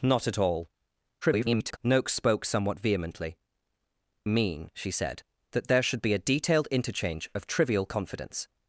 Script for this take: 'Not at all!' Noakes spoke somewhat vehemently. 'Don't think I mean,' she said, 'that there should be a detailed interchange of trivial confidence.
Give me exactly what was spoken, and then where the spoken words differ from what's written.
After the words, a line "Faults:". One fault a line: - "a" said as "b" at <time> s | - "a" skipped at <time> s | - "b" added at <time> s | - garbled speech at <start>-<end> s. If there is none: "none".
'Not at all!' [garbled] Noakes spoke somewhat vehemently. 'Mean,' she said, 'that there should be a detailed interchange of trivial confidence.
Faults:
- garbled speech at 1.2-1.8 s
- "Don't think I" skipped at 3.4 s